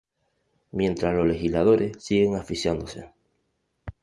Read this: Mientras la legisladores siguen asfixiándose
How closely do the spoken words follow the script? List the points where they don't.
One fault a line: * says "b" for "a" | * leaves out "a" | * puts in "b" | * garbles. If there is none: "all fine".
* says "los" for "la"